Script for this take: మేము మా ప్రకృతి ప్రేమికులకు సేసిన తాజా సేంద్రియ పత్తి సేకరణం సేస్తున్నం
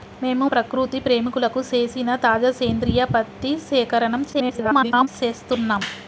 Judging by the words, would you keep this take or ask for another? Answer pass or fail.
fail